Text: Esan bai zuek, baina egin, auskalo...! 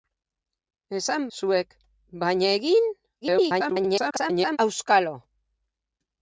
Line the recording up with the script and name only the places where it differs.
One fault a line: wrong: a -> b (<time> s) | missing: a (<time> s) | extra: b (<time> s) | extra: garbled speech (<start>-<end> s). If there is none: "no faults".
missing: bai (1.2 s)
extra: garbled speech (3.2-4.6 s)